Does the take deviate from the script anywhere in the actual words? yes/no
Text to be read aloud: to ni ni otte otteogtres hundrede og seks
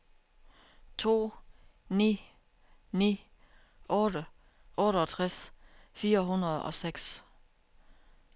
yes